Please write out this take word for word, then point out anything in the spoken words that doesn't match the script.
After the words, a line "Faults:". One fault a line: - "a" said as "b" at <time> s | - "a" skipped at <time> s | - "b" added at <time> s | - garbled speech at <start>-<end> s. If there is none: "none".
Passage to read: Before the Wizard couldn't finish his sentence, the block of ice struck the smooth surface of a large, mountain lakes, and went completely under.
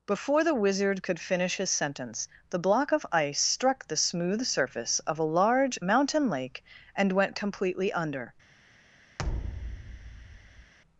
Before the Wizard could finish his sentence, the block of ice struck the smooth surface of a large, mountain lake, and went completely under.
Faults:
- "couldn't" said as "could" at 1.0 s
- "lakes" said as "lake" at 6.3 s